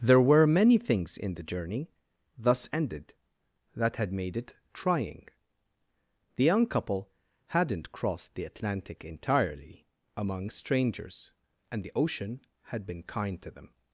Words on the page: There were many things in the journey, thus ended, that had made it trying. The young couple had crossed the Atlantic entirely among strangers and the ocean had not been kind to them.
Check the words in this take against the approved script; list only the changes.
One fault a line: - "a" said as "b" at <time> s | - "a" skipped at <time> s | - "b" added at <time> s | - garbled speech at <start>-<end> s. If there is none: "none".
- "had" said as "hadn't" at 7.5 s
- "not" skipped at 12.9 s